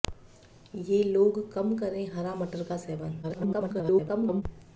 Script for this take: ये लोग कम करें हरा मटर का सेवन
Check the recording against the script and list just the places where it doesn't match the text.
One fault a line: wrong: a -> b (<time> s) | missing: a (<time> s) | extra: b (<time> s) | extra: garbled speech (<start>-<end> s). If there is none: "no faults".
extra: garbled speech (3.2-4.4 s)